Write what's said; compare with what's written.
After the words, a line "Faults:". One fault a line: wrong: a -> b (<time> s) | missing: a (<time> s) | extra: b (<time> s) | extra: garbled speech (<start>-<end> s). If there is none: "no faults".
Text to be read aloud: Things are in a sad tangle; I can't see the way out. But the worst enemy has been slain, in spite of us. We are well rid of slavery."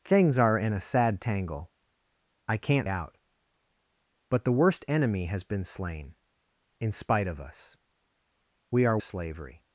Things are in a sad tangle; I can't out. But the worst enemy has been slain, in spite of us. We are slavery."
Faults:
missing: see the way (2.9 s)
missing: well rid of (9.0 s)